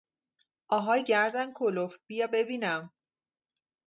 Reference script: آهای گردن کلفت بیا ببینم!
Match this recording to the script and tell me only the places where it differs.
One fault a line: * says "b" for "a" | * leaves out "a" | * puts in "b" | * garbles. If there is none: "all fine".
all fine